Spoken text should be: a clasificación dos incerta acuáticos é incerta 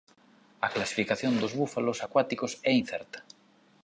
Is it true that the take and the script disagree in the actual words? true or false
true